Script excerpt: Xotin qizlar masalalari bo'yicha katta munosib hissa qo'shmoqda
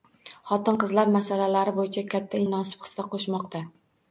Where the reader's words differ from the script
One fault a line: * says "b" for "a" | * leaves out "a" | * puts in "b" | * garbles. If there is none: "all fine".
all fine